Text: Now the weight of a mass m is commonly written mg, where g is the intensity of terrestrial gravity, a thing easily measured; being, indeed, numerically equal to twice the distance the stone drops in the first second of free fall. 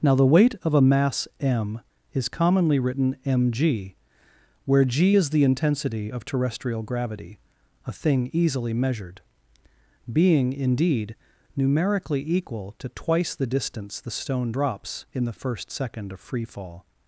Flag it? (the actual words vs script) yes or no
no